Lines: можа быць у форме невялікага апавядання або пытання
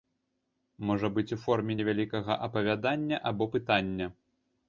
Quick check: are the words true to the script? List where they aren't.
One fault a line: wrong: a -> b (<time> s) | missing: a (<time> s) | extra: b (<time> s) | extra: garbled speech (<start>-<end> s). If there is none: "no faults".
no faults